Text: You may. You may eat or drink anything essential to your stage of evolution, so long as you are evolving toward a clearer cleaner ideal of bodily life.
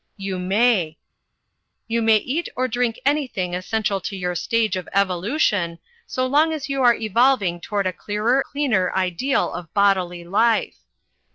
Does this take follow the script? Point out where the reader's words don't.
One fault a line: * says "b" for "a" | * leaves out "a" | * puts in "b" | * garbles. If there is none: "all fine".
all fine